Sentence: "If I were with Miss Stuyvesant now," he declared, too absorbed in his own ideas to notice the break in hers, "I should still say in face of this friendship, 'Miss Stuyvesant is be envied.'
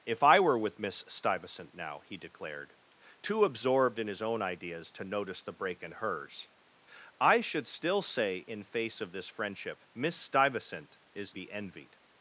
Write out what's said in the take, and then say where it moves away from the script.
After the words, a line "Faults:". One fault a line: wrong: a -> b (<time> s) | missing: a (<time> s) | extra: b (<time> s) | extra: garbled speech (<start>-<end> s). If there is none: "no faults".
"If I were with Miss Stuyvesant now," he declared, too absorbed in his own ideas to notice the break in hers, "I should still say in face of this friendship, 'Miss Stuyvesant is be envied.'
Faults:
no faults